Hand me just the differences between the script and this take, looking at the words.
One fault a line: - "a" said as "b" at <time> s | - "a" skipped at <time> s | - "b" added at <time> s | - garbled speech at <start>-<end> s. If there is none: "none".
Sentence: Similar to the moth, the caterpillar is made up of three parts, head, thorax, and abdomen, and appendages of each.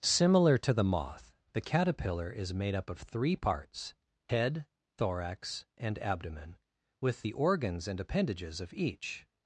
- "with the organs" added at 7.0 s